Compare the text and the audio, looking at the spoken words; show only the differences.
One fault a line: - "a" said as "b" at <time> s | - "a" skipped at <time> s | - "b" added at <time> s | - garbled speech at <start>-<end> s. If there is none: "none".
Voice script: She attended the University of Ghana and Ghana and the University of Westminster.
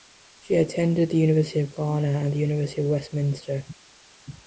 - "Ghana and" skipped at 2.3 s